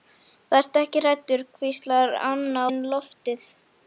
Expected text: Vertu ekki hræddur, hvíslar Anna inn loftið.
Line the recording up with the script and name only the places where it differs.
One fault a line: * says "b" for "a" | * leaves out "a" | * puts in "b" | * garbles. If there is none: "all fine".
all fine